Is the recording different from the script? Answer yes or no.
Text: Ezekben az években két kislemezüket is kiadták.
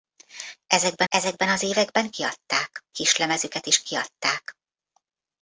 yes